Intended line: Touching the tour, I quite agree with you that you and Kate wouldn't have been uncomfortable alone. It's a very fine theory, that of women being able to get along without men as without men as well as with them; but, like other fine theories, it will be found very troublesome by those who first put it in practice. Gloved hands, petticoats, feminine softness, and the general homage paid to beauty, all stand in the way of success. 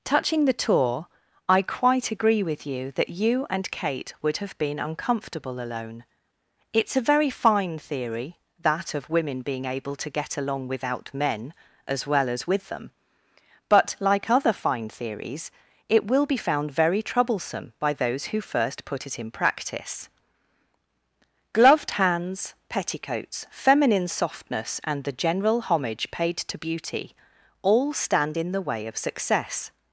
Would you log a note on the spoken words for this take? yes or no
yes